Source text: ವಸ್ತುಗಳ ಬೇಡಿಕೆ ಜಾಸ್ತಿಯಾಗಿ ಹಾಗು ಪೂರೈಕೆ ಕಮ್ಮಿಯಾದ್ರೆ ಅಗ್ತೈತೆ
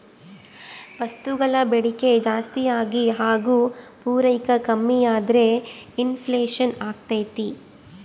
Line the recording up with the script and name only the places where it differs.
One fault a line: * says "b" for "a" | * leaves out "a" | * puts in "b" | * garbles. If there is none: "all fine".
* puts in "ಇನ್ ಫ್ಲೇಷನ್"